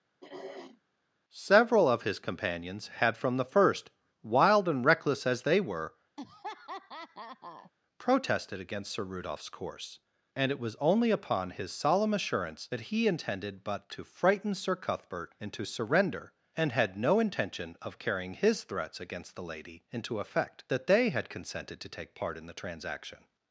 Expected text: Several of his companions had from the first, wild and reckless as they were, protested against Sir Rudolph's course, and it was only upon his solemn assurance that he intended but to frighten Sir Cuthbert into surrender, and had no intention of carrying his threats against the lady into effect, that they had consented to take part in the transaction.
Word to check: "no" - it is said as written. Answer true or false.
true